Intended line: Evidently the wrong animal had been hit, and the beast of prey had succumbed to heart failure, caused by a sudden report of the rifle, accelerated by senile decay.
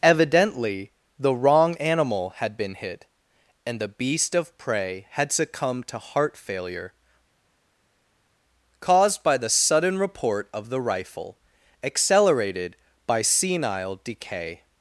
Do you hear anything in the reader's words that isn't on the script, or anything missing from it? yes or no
yes